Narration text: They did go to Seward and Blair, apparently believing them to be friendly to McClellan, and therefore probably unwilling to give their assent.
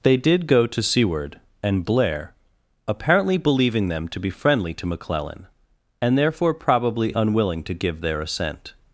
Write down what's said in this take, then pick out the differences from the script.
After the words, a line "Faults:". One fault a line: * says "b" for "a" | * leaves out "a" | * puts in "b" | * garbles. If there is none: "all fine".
They did go to Seward and Blair, apparently believing them to be friendly to McClellan, and therefore probably unwilling to give their assent.
Faults:
all fine